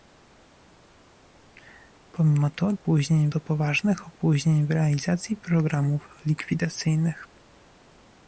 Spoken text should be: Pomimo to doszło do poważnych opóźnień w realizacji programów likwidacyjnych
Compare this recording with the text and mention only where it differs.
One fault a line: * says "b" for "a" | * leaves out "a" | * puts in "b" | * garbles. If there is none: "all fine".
* says "opóźnień" for "doszło"